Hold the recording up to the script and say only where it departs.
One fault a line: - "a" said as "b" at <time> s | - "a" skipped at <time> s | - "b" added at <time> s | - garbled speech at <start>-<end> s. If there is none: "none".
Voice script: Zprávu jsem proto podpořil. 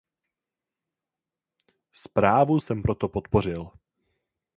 none